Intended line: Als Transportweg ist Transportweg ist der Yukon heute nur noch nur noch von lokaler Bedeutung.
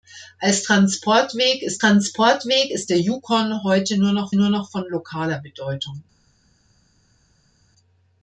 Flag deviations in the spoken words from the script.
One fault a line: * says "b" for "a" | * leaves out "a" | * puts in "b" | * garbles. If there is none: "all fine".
all fine